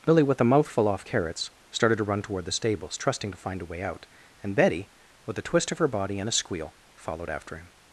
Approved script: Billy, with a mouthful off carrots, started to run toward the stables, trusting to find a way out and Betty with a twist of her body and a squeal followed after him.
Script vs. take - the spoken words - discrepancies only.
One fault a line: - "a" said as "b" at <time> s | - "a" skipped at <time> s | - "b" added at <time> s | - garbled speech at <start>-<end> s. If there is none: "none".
none